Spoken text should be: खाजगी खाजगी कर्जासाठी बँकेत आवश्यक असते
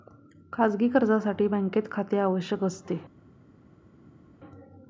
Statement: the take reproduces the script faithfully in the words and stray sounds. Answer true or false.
false